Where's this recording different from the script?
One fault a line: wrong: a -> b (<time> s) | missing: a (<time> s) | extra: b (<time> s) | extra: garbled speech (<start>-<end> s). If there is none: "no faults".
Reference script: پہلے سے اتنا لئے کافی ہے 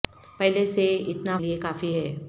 no faults